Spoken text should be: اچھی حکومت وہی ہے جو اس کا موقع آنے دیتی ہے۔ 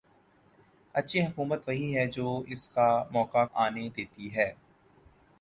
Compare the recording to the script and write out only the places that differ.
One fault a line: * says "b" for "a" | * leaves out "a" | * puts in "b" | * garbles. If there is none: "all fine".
all fine